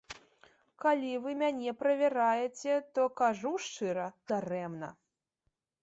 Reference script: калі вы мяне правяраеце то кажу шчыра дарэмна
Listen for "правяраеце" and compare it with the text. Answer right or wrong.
right